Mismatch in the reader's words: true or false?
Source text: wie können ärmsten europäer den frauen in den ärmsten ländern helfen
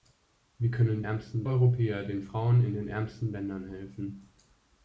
false